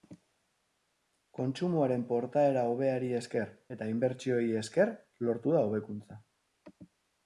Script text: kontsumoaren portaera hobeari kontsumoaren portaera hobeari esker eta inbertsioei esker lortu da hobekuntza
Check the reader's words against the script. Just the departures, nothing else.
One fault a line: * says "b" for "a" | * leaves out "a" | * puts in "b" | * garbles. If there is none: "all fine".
* leaves out "kontsumoaren portaera hobeari"